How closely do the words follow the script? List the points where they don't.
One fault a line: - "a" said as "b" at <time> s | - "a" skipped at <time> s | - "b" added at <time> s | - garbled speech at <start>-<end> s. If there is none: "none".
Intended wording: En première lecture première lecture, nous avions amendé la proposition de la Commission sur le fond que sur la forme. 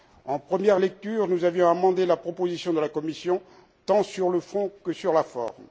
- "première lecture" skipped at 1.3 s
- "tant" added at 3.8 s